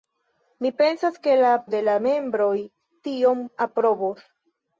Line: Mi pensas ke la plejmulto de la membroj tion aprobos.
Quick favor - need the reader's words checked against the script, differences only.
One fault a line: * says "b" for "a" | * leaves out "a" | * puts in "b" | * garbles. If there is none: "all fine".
* leaves out "plejmulto"